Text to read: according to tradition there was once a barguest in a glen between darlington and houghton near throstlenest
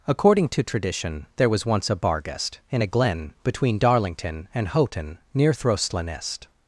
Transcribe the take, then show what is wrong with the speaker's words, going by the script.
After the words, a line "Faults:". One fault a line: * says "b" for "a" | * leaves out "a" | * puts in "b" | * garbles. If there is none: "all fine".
according to tradition there was once a barguest in a glen between darlington and houghton near throstlenest
Faults:
all fine